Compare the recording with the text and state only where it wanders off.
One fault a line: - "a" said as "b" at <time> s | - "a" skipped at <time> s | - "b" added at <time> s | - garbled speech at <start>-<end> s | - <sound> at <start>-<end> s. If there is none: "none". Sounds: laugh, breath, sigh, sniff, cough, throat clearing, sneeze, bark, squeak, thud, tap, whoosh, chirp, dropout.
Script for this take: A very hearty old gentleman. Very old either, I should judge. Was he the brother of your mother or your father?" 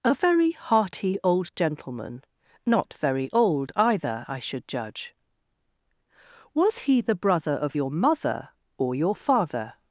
- "Not" added at 2.6 s